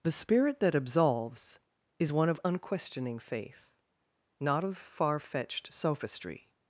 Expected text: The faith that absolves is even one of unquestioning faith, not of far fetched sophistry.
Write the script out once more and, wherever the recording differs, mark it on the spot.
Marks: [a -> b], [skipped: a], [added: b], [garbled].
The [faith -> spirit] that absolves is [skipped: even] one of unquestioning faith, not of far fetched sophistry.